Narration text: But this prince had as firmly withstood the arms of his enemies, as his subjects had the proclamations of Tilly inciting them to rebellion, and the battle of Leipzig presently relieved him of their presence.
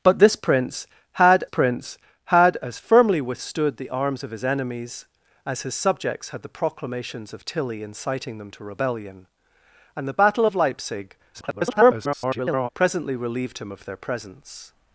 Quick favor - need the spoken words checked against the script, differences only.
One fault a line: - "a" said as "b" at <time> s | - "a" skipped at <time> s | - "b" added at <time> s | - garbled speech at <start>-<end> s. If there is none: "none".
- "prince had" added at 1.4 s
- garbled speech at 11.3-12.7 s